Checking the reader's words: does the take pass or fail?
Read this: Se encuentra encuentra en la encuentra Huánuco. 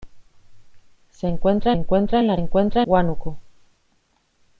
pass